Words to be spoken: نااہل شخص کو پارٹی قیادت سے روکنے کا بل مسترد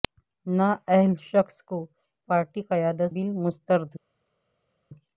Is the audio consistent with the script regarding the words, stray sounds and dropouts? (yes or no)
no